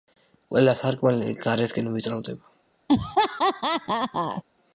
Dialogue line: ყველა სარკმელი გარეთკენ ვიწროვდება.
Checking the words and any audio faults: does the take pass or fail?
fail